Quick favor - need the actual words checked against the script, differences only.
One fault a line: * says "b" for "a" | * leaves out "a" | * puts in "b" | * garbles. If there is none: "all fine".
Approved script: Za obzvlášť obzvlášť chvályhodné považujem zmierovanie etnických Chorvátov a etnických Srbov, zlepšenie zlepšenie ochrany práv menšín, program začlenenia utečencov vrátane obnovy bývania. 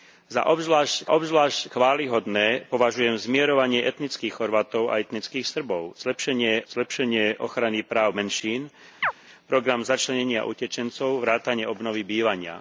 all fine